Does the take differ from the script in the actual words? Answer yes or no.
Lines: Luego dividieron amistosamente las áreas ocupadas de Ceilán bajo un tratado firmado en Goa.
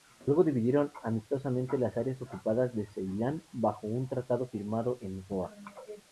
no